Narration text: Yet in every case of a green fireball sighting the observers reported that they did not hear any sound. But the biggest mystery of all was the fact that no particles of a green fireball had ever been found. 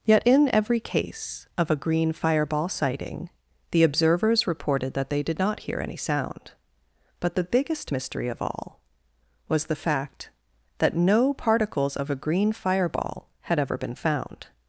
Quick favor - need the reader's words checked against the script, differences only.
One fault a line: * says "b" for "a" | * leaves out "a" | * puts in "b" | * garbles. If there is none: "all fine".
all fine